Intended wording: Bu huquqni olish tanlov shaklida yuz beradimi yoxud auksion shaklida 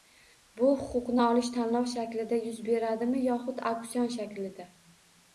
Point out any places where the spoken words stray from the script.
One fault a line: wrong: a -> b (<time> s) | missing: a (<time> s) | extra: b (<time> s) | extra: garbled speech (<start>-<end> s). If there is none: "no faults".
no faults